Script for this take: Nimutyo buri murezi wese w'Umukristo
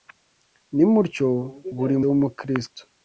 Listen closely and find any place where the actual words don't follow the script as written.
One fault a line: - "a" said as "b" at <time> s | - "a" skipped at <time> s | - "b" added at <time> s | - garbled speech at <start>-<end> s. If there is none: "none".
- "murezi wese" skipped at 2.0 s